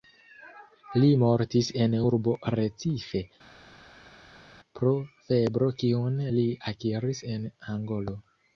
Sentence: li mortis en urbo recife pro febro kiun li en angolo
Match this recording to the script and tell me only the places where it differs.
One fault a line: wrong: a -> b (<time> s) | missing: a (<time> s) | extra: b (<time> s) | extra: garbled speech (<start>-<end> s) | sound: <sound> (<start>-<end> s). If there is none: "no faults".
extra: akiris (6.7 s)